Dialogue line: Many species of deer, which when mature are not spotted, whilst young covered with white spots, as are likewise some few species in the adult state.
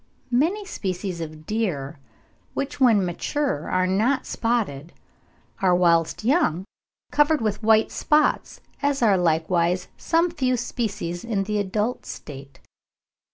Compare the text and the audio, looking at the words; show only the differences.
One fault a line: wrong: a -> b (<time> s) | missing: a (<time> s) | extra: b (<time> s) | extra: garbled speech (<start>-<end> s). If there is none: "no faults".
extra: are (5.6 s)